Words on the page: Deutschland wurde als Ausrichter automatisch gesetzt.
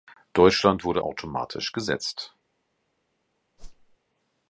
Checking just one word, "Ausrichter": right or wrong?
wrong